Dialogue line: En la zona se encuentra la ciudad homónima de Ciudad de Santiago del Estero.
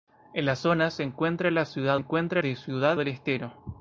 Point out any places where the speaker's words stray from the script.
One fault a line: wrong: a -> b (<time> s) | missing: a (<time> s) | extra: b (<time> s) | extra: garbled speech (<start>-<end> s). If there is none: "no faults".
wrong: homónima -> encuentra (1.9 s)
missing: de Santiago (3.0 s)